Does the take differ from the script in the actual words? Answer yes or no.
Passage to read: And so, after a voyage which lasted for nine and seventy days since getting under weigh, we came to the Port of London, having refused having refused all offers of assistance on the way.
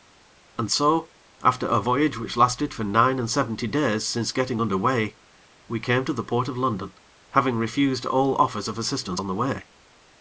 yes